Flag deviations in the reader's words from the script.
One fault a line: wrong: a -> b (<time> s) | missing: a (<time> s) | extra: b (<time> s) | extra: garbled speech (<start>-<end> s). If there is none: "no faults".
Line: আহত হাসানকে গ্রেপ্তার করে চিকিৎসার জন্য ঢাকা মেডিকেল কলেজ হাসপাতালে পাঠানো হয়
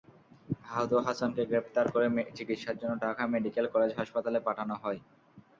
no faults